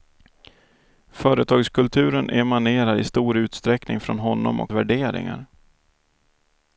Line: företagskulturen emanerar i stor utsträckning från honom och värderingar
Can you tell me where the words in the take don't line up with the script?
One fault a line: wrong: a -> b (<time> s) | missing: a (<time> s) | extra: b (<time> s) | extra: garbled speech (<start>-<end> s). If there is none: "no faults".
no faults